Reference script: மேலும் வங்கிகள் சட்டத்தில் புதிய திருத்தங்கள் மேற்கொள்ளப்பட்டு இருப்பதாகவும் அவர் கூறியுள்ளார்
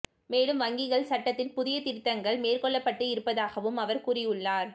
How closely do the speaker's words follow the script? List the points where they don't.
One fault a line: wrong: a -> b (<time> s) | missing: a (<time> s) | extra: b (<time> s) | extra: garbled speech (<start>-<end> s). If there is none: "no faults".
no faults